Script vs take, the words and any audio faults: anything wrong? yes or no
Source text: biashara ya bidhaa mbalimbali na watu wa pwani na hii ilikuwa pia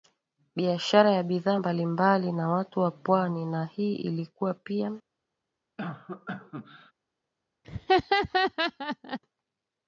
yes